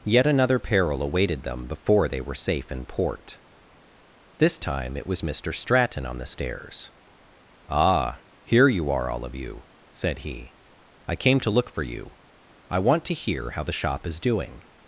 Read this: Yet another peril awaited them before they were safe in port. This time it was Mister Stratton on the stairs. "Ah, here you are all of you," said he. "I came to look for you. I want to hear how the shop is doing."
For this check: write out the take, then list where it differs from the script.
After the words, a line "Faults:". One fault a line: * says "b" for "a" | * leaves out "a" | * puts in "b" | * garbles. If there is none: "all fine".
Yet another peril awaited them before they were safe in port. This time it was Mister Stratton on the stairs. "Ah, here you are all of you," said he. "I came to look for you. I want to hear how the shop is doing."
Faults:
all fine